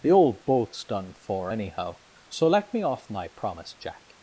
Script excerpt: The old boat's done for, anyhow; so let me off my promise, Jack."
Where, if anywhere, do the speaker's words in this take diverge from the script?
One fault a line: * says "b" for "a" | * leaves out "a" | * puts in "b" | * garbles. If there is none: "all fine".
all fine